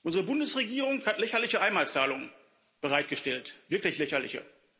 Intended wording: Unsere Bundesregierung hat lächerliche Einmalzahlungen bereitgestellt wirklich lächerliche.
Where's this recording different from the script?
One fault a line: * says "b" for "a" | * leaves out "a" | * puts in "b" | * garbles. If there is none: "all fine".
all fine